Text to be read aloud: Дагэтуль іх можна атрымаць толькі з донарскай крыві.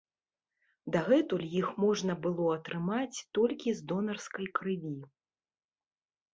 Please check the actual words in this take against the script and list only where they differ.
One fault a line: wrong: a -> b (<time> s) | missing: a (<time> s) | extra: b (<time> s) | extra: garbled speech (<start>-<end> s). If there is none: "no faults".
extra: было (2.2 s)